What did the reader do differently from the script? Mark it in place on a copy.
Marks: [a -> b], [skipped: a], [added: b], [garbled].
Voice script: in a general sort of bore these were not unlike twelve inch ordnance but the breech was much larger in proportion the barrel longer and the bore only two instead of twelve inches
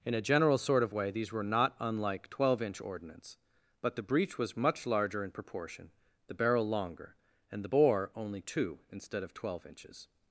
in a general sort of [bore -> way] these were not unlike twelve inch ordnance but the breech was much larger in proportion the barrel longer and the bore only two instead of twelve inches